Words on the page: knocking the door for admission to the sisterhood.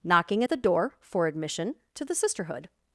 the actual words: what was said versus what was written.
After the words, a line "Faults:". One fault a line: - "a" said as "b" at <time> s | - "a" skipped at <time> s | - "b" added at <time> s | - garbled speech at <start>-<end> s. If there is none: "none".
knocking the door for admission to the sisterhood.
Faults:
none